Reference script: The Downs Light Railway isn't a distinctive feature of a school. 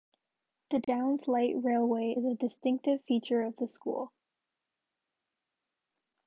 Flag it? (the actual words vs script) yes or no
yes